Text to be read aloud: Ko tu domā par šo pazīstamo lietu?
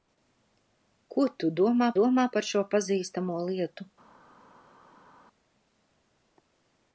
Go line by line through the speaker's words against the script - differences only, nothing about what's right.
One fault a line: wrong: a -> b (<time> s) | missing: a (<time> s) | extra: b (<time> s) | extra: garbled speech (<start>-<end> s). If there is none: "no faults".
extra: domā (2.0 s)